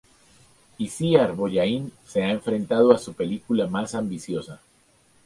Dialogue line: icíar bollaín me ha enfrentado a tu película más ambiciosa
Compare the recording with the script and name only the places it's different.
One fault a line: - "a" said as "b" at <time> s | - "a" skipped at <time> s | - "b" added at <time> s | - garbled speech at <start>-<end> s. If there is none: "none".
- "me" said as "se" at 2.1 s
- "tu" said as "su" at 3.0 s